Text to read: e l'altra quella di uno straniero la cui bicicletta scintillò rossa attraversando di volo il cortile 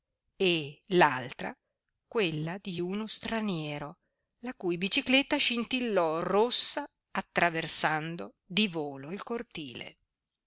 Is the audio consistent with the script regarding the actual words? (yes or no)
yes